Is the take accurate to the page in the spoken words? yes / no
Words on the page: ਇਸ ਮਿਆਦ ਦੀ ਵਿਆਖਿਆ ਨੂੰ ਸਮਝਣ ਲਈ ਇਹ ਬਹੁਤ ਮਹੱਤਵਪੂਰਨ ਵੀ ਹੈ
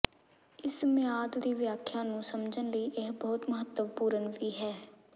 yes